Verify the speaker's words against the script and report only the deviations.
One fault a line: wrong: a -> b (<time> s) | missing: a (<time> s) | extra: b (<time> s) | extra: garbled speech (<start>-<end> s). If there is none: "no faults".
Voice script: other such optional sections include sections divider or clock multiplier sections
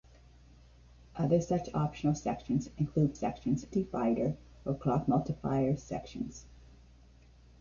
no faults